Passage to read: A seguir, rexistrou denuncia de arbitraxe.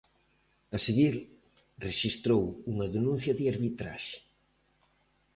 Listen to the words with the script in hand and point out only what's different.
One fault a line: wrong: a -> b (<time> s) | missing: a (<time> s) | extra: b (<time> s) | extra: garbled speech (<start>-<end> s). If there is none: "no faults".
extra: unha (2.7 s)